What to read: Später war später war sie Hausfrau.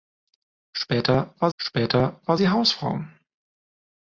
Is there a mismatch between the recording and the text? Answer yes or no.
no